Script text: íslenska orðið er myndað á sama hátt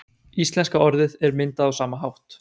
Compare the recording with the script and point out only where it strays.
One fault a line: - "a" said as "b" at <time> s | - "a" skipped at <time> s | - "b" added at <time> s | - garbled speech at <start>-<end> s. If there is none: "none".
none